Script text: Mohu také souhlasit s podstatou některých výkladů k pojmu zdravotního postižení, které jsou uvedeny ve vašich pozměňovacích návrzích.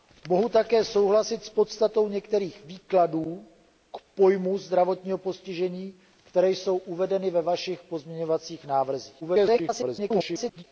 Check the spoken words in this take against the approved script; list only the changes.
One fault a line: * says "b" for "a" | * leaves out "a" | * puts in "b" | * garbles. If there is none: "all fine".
* garbles